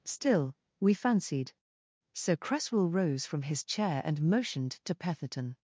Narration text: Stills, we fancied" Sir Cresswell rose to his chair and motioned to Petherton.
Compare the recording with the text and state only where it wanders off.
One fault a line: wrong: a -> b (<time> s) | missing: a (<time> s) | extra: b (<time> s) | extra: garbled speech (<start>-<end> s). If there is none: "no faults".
wrong: Stills -> Still (0.0 s)
wrong: to -> from (3.2 s)